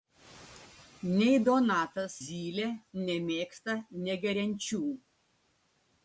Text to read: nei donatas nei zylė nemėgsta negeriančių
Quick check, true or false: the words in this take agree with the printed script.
false